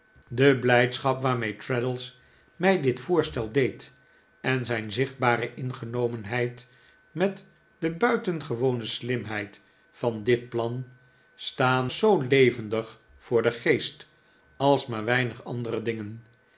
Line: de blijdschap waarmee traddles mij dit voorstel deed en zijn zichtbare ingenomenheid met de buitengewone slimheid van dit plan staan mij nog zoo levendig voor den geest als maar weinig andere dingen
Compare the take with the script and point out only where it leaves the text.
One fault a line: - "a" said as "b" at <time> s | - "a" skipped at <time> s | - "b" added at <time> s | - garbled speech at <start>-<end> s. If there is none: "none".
- "mij nog" skipped at 11.9 s